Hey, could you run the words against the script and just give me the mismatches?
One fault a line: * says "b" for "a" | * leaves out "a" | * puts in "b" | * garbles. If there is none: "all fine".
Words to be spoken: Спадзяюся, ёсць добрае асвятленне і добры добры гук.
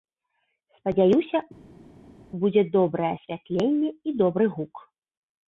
* says "будзе" for "ёсць"
* leaves out "добры"